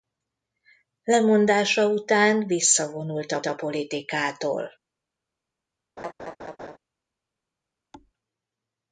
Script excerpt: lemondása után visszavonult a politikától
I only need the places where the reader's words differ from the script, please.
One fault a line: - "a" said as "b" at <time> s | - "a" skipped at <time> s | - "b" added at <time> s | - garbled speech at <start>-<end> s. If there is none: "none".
- "a" added at 3.5 s